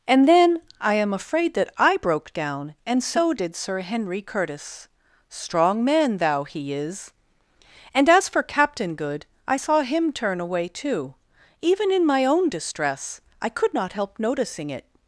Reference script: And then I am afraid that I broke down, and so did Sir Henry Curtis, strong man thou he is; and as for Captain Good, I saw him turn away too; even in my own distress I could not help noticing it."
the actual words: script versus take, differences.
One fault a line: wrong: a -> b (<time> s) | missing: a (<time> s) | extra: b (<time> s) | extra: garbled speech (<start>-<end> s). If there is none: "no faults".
no faults